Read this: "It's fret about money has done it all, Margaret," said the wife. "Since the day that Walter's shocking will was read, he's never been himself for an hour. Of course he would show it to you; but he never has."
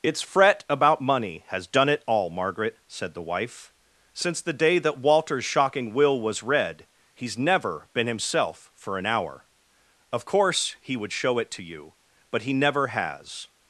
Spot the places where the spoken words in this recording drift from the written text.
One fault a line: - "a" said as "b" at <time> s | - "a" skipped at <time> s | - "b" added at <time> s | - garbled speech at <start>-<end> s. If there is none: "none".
none